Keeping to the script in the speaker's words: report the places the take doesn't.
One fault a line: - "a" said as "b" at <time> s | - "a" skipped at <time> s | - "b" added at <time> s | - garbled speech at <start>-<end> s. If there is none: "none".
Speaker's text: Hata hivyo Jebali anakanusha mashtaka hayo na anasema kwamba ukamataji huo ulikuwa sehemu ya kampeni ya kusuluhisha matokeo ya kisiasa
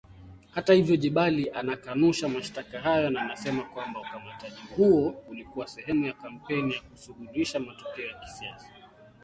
none